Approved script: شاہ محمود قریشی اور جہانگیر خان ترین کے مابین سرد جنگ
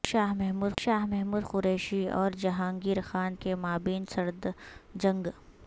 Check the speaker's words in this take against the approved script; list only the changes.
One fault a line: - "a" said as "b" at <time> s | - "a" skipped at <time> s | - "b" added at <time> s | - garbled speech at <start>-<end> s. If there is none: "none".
- "شاہ محمود" added at 0.8 s
- "ترین" skipped at 3.3 s